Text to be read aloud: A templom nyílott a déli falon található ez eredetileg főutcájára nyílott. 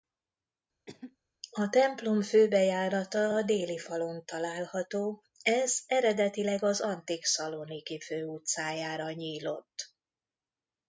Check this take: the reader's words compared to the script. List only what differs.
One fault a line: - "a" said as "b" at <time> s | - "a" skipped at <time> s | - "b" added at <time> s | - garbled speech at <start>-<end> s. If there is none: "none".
- "nyílott" said as "főbejárata" at 2.2 s
- "az antik Szaloniki" added at 6.6 s